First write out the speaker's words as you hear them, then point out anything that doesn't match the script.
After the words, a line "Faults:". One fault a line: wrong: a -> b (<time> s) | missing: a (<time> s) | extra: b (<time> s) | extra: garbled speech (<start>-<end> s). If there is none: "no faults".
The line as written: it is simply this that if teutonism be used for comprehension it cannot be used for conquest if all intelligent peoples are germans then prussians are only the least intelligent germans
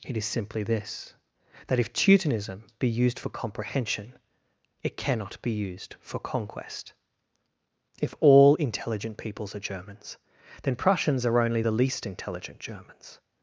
it is simply this that if teutonism be used for comprehension it cannot be used for conquest if all intelligent peoples are germans then prussians are only the least intelligent germans
Faults:
no faults